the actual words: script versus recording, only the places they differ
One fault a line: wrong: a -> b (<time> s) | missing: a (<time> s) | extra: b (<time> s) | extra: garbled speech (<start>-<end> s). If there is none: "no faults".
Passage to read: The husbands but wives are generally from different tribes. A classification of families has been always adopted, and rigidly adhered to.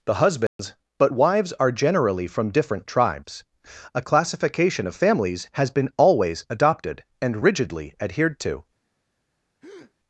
no faults